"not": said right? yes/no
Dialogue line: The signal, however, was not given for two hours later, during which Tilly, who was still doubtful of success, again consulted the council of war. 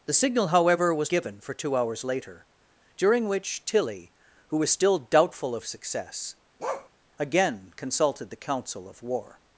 no